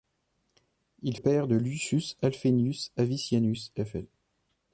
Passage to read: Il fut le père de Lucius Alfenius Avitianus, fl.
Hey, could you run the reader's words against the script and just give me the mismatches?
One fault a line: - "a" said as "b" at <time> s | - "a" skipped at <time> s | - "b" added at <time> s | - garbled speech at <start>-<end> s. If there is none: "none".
- "fut le" skipped at 1.1 s